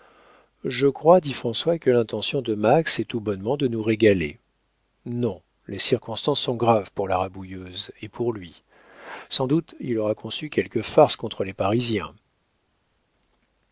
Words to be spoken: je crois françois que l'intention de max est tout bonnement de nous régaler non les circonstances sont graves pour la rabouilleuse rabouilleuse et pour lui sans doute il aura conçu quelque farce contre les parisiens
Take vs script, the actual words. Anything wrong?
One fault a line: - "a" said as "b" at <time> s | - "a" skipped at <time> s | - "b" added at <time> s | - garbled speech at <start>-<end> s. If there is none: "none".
- "dit" added at 1.2 s
- "rabouilleuse" skipped at 7.9 s